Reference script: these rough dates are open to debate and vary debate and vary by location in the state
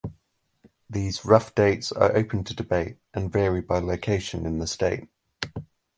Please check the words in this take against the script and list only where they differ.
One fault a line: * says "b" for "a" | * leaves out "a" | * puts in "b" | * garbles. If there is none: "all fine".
* leaves out "debate and vary"